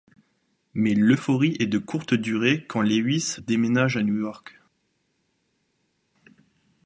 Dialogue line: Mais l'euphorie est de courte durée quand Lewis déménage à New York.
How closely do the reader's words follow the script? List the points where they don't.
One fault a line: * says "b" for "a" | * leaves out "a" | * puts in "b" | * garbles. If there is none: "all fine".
all fine